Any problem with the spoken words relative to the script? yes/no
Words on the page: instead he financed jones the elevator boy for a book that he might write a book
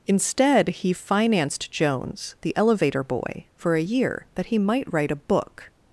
yes